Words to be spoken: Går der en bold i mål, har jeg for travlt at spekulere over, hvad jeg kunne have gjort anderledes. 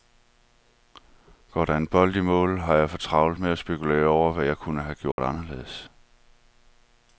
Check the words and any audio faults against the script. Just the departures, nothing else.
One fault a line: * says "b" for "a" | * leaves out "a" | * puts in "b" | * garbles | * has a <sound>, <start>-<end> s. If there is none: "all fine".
* puts in "med"
* has a dropout, 5.1-5.2 s